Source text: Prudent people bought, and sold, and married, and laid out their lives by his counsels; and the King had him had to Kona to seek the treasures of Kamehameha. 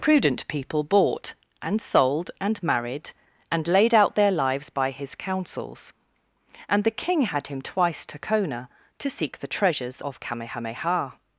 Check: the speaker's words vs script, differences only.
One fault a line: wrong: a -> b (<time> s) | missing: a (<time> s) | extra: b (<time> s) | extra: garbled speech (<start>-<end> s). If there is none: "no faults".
wrong: had -> twice (7.6 s)